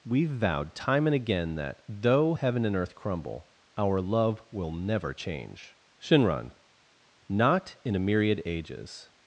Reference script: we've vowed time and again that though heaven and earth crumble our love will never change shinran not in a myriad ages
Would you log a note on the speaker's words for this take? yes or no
no